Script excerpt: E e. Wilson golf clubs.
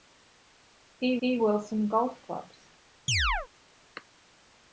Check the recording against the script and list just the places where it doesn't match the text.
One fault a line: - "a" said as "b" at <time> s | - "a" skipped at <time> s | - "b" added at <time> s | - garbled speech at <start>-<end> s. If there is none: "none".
none